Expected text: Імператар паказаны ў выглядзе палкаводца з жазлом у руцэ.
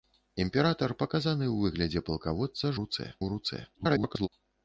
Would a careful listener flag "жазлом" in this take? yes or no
yes